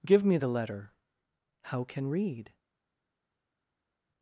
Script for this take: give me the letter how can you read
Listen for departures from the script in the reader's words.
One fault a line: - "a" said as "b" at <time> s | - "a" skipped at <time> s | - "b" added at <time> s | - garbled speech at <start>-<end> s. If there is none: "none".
- "you" skipped at 2.1 s